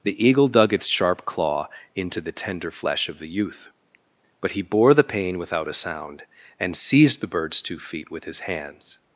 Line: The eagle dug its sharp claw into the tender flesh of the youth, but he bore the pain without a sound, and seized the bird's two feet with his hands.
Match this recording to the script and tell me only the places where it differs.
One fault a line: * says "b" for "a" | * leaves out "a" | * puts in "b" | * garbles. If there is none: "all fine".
all fine